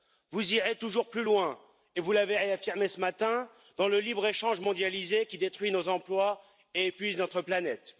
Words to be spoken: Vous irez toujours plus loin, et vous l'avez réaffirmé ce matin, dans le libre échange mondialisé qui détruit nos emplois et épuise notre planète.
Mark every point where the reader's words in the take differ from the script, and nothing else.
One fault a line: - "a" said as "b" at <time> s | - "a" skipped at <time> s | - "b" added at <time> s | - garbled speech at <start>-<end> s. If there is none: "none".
none